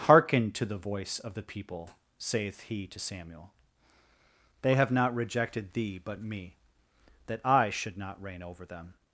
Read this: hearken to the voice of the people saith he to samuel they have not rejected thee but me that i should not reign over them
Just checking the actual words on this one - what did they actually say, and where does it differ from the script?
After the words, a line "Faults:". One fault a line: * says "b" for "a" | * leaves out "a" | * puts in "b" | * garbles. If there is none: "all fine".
hearken to the voice of the people saith he to samuel they have not rejected thee but me that i should not reign over them
Faults:
all fine